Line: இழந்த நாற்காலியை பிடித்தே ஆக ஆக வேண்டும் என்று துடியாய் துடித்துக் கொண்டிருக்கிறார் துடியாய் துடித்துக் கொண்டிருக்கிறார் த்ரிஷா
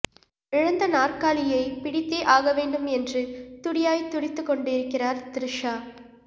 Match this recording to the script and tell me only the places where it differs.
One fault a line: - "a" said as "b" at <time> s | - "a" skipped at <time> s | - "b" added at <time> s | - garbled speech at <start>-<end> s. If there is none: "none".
- "ஆக" skipped at 2.5 s
- "துடியாய் துடித்துக் கொண்டிருக்கிறார்" skipped at 5.2 s